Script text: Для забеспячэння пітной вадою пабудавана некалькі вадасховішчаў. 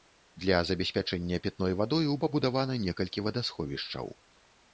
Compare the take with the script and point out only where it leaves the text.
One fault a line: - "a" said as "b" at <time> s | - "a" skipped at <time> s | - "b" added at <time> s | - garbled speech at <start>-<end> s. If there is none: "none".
none